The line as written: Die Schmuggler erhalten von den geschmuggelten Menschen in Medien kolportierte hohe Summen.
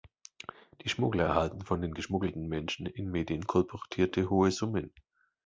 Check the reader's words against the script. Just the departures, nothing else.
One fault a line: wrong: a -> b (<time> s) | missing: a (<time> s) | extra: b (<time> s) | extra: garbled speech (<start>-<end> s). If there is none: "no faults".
no faults